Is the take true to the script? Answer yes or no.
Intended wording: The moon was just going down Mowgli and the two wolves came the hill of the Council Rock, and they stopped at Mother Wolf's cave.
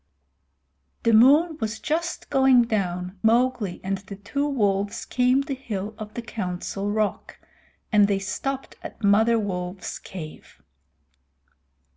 yes